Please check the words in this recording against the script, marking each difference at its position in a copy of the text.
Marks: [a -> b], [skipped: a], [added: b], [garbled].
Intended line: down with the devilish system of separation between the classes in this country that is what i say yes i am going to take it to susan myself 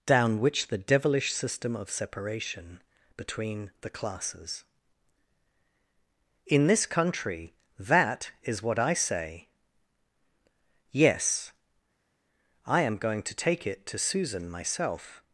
down [with -> which] the devilish system of separation between the classes in this country that is what i say yes i am going to take it to susan myself